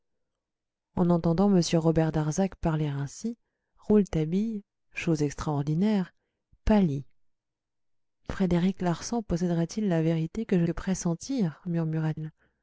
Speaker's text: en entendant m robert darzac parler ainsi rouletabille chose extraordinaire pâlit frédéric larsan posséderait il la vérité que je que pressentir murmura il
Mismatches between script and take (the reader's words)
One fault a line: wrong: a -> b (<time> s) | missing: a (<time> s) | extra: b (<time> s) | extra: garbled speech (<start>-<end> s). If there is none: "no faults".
no faults